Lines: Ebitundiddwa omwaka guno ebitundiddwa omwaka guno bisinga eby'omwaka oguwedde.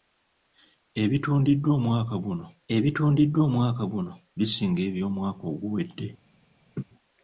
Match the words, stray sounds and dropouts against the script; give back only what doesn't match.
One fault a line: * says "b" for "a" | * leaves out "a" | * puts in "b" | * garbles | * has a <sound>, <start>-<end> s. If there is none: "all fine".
* has a laugh, 6.8-6.8 s